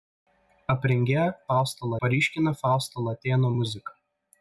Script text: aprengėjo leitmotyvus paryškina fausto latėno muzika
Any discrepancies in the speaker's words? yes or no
yes